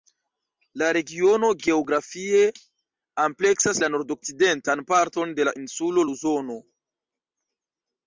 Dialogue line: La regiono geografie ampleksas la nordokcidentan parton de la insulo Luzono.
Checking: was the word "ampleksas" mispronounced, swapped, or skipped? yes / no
no